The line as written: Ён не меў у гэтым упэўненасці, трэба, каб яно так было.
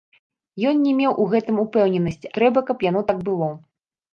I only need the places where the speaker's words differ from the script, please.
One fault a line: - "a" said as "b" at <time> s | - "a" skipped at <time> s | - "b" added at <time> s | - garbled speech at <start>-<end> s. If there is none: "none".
none